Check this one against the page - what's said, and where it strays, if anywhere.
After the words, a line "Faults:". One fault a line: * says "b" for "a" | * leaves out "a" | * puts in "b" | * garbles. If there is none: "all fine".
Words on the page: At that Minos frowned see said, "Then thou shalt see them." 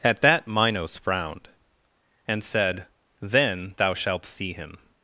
At that Minos frowned and said, "Then thou shalt see him."
Faults:
* says "and" for "see"
* says "him" for "them"